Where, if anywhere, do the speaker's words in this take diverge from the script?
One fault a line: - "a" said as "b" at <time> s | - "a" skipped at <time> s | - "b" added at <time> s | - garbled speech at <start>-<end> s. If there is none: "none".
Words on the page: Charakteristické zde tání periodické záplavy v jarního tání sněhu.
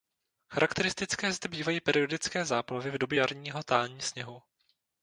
- "tání" said as "bývají" at 1.5 s
- "době" added at 3.0 s